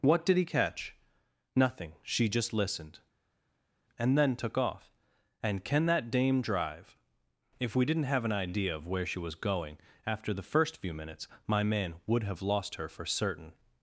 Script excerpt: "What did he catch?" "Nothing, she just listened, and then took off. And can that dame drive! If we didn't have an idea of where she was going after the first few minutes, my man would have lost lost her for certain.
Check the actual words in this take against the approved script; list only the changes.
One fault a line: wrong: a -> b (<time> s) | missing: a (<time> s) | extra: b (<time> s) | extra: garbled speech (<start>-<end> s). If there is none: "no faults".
missing: lost (12.7 s)